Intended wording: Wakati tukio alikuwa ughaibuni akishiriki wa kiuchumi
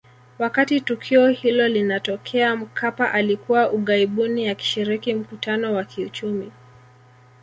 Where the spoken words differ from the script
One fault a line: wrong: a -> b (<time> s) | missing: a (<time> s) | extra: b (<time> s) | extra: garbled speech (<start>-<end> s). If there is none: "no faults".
extra: hilo linatokea Mkapa (1.3 s)
extra: mkutano (5.1 s)